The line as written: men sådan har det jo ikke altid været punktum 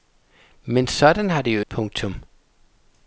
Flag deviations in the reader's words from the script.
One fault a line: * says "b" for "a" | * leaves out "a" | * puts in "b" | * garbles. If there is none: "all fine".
* leaves out "ikke altid været"